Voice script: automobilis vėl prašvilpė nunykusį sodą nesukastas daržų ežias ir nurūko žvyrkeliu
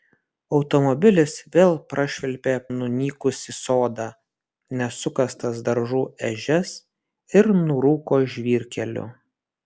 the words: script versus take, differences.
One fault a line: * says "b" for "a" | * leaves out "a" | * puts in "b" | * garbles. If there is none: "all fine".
all fine